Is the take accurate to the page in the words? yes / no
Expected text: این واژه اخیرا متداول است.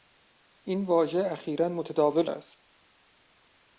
yes